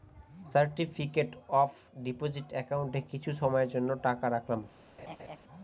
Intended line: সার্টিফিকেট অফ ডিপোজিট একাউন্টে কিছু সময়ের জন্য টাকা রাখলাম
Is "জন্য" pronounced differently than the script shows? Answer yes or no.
no